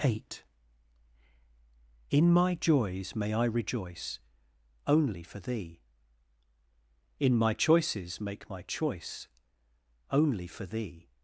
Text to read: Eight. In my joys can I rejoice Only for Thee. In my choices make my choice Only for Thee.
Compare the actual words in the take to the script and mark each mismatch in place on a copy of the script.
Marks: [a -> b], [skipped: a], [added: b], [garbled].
Eight. In my joys [can -> may] I rejoice Only for Thee. In my choices make my choice Only for Thee.